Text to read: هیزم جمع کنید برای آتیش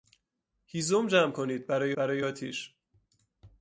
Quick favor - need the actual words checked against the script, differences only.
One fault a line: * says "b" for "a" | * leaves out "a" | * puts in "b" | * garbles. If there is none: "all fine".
* puts in "برای"